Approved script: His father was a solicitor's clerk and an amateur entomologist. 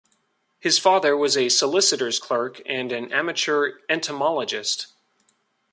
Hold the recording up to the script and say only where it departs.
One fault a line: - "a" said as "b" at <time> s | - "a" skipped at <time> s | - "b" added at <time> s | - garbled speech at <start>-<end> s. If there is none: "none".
none